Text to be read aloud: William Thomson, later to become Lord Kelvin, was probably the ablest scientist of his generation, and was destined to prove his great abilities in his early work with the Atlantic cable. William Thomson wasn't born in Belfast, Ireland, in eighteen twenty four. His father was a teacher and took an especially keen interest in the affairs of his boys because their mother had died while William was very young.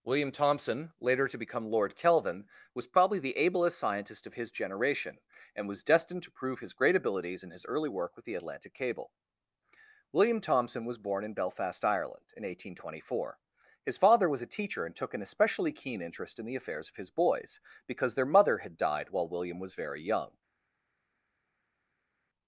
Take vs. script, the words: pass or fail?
fail